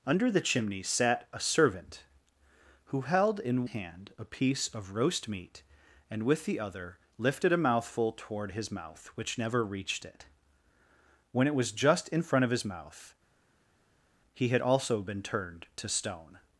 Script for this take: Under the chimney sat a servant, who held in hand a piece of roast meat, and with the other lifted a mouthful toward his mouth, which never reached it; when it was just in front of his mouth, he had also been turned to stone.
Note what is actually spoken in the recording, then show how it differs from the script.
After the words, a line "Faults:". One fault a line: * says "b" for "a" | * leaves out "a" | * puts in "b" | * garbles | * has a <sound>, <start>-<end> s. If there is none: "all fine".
Under the chimney sat a servant, who held in hand a piece of roast meat, and with the other lifted a mouthful toward his mouth, which never reached it; when it was just in front of his mouth, he had also been turned to stone.
Faults:
all fine